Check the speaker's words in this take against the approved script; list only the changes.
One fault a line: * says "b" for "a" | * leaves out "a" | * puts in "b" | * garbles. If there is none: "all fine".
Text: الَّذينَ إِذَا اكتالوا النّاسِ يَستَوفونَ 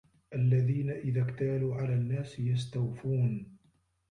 * puts in "عَلَى"